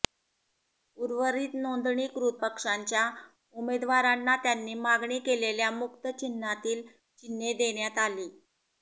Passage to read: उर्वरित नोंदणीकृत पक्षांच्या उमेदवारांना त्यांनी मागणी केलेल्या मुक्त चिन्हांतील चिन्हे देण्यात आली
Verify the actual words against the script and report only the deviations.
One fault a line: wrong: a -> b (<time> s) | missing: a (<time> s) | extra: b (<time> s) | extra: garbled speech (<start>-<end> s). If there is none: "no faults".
no faults